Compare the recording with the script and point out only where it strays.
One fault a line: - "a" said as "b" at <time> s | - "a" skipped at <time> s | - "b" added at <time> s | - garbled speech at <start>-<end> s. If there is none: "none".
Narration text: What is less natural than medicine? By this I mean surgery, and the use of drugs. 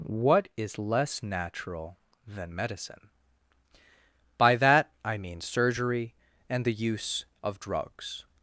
- "this" said as "that" at 4.5 s